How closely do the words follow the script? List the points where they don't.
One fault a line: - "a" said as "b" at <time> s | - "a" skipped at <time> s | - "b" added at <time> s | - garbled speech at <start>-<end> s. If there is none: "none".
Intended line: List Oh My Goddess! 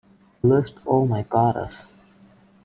none